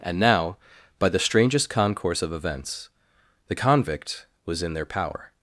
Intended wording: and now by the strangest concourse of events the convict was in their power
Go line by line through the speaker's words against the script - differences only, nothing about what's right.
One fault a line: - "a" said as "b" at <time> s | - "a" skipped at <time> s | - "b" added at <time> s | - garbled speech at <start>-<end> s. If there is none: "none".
none